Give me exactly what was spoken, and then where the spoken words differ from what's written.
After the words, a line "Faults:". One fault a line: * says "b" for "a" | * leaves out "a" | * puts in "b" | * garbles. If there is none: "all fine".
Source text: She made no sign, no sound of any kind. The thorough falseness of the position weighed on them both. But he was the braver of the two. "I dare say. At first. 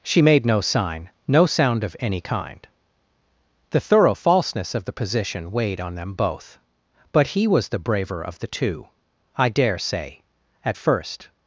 She made no sign, no sound of any kind. The thorough falseness of the position weighed on them both. But he was the braver of the two. "I dare say. At first.
Faults:
all fine